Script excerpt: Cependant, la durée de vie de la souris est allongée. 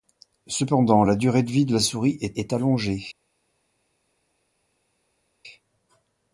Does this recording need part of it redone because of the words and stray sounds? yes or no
yes